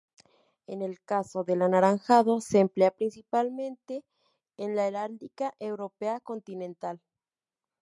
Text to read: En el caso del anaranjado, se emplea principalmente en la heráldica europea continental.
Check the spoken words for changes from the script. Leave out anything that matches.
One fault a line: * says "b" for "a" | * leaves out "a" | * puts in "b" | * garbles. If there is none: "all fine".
all fine